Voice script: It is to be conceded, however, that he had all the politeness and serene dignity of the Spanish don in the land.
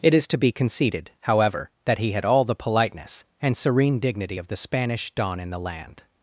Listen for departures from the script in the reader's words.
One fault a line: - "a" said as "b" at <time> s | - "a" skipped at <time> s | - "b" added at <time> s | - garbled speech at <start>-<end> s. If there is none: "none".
none